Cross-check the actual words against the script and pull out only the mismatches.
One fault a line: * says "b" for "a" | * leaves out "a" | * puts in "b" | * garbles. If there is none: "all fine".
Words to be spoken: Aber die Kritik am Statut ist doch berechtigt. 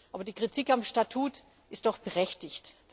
all fine